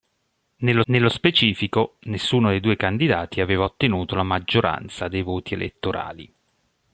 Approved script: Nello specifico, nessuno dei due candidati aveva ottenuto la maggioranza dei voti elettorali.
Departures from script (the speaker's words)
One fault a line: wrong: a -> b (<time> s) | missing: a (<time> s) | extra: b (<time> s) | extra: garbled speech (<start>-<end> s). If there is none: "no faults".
extra: nello (0.9 s)